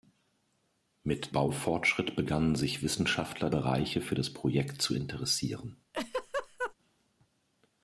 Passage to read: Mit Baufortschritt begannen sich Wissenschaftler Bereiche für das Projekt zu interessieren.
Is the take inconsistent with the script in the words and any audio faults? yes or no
yes